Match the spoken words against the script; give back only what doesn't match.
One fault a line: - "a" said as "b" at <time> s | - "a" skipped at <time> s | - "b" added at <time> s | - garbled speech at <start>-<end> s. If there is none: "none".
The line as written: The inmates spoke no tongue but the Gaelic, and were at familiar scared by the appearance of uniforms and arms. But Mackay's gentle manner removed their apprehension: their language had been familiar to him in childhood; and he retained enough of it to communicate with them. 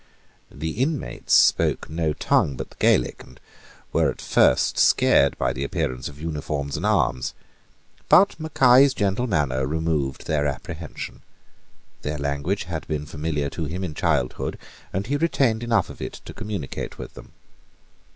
- "familiar" said as "first" at 4.2 s